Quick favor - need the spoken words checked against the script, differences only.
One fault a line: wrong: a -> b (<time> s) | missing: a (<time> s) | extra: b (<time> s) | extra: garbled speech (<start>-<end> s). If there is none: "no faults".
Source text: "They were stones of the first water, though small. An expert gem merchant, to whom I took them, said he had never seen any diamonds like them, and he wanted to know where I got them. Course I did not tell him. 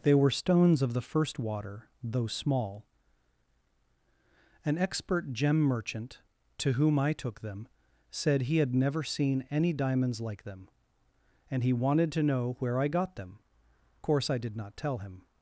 no faults